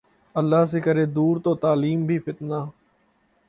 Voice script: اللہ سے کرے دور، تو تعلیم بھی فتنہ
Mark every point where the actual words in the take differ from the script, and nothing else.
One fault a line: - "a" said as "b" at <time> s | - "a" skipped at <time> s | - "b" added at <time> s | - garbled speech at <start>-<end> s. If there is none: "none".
none